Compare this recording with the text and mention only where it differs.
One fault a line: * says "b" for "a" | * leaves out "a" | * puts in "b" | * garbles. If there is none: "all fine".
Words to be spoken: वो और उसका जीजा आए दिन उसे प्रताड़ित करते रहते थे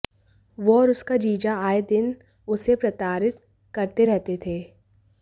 all fine